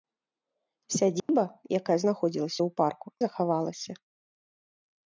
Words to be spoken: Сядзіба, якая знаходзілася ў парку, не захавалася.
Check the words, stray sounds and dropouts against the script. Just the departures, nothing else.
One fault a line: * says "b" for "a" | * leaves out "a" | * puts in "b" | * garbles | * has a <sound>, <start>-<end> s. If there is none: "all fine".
* has a dropout, 1.2-1.3 s
* leaves out "не"